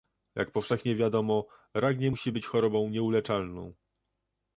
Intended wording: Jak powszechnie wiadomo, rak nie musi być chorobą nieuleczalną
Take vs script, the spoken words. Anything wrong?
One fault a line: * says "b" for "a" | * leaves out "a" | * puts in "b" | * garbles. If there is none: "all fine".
all fine